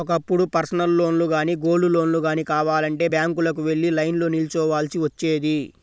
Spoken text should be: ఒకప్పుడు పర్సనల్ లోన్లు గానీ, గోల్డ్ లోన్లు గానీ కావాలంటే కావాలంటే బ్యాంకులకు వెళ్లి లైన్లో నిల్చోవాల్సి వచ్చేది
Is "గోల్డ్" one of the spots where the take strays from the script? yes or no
no